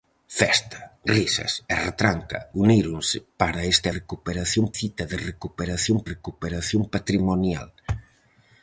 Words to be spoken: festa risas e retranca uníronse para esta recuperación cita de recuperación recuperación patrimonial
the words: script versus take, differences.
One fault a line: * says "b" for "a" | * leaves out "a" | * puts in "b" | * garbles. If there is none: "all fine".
all fine